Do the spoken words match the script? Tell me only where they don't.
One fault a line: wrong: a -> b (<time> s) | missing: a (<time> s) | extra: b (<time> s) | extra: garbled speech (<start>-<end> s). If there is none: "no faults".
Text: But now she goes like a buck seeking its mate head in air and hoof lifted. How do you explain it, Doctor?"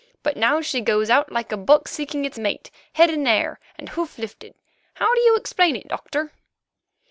extra: out (1.1 s)